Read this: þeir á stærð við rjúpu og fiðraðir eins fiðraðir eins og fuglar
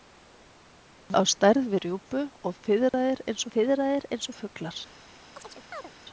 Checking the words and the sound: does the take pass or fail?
fail